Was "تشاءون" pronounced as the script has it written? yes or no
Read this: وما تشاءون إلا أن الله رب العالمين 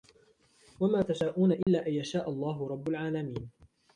yes